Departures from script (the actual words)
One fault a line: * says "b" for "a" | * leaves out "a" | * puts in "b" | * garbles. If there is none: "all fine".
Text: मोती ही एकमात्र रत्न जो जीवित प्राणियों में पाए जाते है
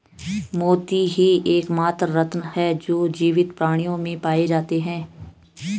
* puts in "है"